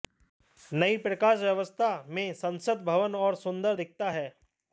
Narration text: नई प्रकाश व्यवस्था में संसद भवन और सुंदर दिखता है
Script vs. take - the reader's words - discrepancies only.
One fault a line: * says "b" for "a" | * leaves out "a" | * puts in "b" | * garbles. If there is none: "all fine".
all fine